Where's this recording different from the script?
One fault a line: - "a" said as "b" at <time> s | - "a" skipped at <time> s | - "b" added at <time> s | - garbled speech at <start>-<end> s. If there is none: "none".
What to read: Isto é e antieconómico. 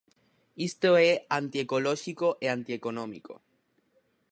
- "antiecolóxico" added at 1.4 s